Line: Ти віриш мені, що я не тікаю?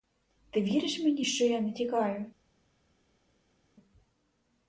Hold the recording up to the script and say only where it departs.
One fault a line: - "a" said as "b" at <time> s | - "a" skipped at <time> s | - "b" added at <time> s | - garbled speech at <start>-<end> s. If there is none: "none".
none